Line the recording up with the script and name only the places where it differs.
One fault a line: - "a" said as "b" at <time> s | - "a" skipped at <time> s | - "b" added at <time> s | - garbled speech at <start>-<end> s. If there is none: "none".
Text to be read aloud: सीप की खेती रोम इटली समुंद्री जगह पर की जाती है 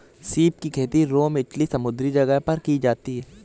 none